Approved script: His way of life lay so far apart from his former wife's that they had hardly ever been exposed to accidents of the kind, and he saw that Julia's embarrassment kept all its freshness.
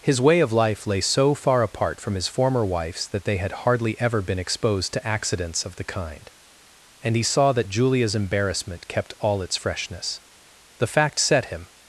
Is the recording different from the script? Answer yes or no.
yes